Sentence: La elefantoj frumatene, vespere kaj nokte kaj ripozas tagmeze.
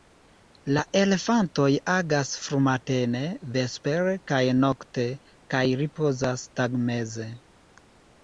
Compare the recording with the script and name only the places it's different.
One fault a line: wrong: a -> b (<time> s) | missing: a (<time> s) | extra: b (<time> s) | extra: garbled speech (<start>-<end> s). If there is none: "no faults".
extra: agas (1.9 s)